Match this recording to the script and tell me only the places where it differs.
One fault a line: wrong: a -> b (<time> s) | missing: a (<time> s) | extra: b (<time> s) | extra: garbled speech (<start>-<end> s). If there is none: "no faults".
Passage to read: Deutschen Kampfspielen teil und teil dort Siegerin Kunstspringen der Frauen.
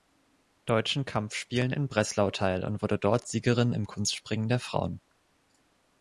extra: in Breslau (1.7 s)
wrong: teil -> wurde (2.8 s)
extra: im (3.7 s)